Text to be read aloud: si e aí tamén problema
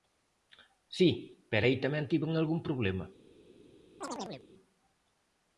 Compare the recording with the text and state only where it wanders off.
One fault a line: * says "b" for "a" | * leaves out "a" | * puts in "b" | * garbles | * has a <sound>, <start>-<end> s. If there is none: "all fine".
* says "pero" for "e"
* puts in "tiven algún"
* has a chirp, 4.0-4.5 s